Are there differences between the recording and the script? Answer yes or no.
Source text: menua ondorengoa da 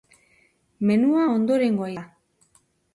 no